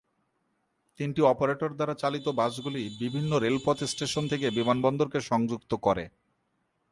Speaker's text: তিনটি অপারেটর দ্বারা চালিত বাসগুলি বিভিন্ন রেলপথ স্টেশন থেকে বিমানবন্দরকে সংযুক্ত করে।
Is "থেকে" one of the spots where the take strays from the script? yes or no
no